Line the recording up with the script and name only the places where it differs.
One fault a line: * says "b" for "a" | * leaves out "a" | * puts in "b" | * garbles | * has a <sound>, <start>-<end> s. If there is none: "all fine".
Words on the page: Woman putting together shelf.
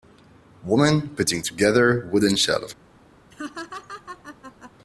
* puts in "wooden"
* has a laugh, 3.3-4.7 s